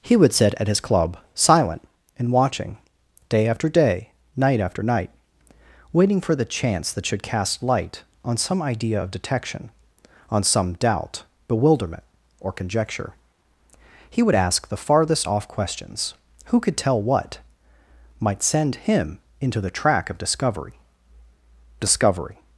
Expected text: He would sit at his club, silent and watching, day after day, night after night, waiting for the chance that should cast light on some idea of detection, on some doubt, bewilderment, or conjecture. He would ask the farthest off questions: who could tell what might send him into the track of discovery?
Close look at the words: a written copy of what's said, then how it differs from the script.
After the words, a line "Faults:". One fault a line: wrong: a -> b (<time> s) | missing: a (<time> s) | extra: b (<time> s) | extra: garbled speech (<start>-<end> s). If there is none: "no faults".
He would sit at his club, silent and watching, day after day, night after night, waiting for the chance that should cast light on some idea of detection, on some doubt, bewilderment, or conjecture. He would ask the farthest off questions: who could tell what might send him into the track of discovery discovery?
Faults:
extra: discovery (21.8 s)